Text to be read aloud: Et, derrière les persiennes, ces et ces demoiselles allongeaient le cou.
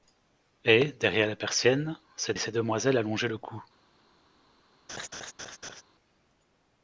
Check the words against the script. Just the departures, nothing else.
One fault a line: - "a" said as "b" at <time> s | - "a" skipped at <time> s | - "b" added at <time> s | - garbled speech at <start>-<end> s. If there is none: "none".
none